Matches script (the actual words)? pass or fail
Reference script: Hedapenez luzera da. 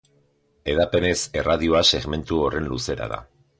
fail